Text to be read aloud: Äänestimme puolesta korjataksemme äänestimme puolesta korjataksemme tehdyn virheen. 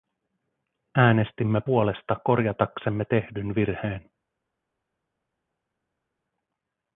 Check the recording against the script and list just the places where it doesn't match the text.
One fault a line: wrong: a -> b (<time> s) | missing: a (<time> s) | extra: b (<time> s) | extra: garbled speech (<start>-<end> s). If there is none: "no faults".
missing: äänestimme puolesta korjataksemme (3.0 s)